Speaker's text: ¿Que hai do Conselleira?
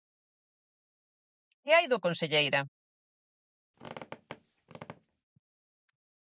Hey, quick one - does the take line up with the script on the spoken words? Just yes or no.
yes